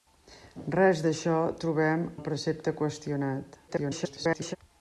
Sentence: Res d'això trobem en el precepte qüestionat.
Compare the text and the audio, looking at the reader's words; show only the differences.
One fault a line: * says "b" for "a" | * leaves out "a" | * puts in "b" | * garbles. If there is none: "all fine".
* leaves out "en"
* garbles